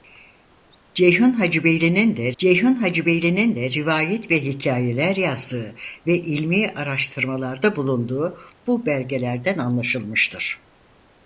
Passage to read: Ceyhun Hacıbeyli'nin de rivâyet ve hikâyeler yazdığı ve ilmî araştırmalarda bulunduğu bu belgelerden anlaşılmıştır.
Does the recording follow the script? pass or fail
fail